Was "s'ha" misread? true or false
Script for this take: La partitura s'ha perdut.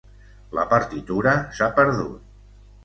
false